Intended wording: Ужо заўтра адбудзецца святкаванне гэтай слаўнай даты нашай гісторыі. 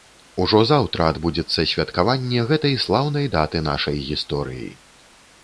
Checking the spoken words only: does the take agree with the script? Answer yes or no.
yes